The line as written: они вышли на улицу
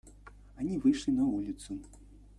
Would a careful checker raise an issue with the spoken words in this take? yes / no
no